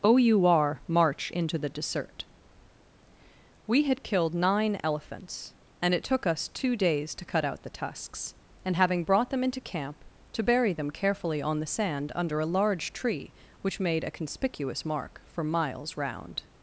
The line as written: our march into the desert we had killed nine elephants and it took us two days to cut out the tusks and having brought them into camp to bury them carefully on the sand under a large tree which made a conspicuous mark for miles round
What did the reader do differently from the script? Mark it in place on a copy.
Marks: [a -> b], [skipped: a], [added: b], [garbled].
our march into the desert we had killed nine elephants and it took us two days to cut out the tusks and having brought them into camp to bury them carefully on the sand under a large tree which made a conspicuous mark for miles round